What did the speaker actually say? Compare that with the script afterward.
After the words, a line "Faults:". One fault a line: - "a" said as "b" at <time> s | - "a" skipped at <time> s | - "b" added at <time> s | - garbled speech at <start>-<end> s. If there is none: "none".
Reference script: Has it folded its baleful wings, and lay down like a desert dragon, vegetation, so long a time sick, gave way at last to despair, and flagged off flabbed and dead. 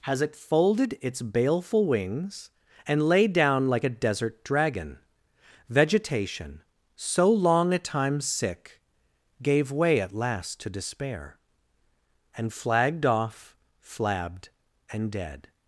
Has it folded its baleful wings, and lay down like a desert dragon, vegetation, so long a time sick, gave way at last to despair, and flagged off flabbed and dead.
Faults:
none